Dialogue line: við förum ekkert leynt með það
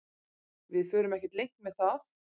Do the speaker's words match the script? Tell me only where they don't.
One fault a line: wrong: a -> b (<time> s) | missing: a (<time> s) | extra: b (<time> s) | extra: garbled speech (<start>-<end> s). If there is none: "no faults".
no faults